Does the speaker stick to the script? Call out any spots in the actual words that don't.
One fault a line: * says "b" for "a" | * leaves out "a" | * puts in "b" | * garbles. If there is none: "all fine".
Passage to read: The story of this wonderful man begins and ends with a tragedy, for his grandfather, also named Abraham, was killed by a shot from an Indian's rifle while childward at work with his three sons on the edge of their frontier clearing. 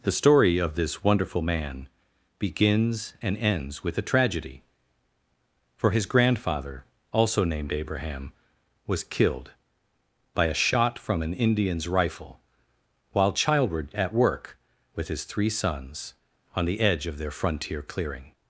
all fine